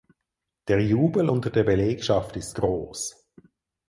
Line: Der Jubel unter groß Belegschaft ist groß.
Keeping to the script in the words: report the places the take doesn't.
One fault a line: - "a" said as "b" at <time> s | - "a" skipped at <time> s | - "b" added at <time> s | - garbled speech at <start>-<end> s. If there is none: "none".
- "groß" said as "der" at 1.5 s